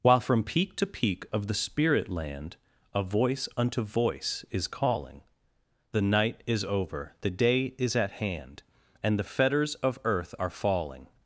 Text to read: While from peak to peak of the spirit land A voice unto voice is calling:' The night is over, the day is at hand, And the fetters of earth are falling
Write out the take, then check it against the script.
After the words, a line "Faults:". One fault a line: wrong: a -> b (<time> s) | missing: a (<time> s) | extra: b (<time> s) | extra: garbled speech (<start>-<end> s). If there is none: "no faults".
While from peak to peak of the spirit land A voice unto voice is calling:' The night is over, the day is at hand, And the fetters of earth are falling
Faults:
no faults